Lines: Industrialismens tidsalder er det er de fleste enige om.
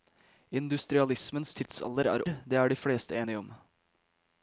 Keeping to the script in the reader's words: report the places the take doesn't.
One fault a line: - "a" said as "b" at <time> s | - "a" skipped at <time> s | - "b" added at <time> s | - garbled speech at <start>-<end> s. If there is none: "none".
none